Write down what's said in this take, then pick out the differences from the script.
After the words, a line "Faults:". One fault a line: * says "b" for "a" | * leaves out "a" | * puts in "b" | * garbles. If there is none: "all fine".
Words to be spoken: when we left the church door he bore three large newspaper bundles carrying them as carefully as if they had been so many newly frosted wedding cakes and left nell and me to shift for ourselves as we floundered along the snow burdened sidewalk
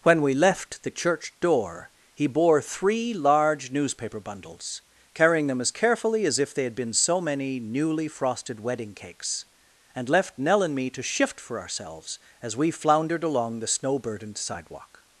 when we left the church door he bore three large newspaper bundles carrying them as carefully as if they had been so many newly frosted wedding cakes and left nell and me to shift for ourselves as we floundered along the snow burdened sidewalk
Faults:
all fine